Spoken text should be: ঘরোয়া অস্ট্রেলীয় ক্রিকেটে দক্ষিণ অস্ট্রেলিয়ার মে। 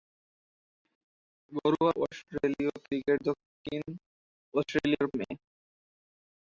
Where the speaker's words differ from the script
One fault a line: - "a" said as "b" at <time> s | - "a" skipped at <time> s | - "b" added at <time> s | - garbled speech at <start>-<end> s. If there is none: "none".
none